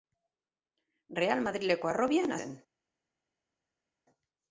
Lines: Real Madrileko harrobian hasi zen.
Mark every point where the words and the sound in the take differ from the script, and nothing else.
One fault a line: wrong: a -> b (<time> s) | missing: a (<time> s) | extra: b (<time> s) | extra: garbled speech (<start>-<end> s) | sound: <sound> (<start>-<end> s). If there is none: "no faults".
missing: hasi (2.4 s)